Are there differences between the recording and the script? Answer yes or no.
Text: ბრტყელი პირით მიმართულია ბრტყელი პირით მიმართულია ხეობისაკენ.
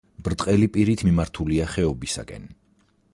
yes